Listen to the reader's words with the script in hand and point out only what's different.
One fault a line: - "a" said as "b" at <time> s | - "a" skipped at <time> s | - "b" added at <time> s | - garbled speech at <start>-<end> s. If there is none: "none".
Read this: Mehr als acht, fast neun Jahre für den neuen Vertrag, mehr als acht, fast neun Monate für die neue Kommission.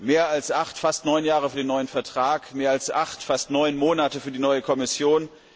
none